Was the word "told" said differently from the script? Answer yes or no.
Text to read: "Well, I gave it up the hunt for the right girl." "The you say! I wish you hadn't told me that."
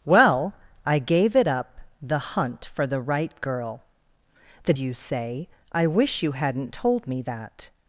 no